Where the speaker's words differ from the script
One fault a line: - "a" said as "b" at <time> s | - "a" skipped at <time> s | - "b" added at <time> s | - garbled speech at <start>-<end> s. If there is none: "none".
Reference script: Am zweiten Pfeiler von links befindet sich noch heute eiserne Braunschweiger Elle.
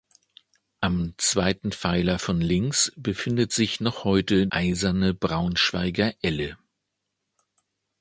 none